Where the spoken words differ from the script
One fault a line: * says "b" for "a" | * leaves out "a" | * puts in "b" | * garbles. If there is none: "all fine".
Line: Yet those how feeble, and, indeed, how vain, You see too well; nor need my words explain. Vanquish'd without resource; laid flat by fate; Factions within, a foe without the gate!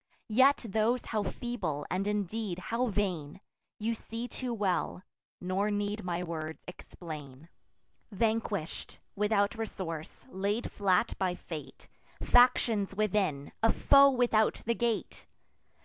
all fine